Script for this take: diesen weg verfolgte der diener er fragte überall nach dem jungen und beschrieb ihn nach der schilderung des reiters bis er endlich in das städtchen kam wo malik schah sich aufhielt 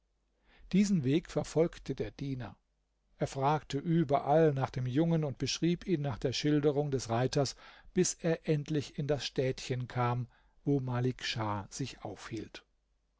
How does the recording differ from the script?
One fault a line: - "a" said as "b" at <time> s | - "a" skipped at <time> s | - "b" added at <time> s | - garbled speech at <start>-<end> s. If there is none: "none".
none